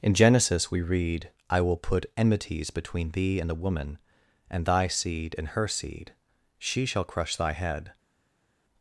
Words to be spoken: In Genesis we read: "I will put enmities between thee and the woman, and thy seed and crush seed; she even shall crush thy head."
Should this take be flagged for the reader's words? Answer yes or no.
yes